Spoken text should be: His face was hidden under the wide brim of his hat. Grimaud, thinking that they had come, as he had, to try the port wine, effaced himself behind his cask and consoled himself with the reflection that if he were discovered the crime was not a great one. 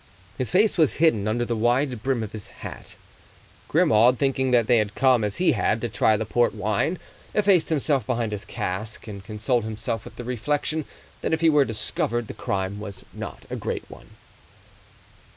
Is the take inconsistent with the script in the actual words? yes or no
no